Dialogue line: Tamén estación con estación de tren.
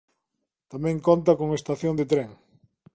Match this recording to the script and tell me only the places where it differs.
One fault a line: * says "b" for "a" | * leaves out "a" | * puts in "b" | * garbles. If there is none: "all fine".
* says "conta" for "estación"